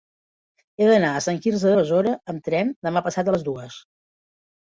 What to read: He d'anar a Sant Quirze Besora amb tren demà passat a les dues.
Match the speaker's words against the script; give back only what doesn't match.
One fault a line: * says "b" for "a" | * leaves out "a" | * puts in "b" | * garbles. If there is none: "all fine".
all fine